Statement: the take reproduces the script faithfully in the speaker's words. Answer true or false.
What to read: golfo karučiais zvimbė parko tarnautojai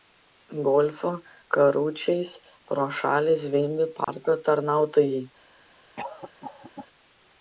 false